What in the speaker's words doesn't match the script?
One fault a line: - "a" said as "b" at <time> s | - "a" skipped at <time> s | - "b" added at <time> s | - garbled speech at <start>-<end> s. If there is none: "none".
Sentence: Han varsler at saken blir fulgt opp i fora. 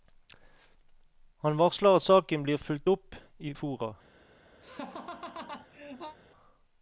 none